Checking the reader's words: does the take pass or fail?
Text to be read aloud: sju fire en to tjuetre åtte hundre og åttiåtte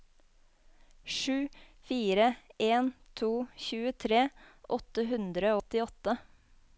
fail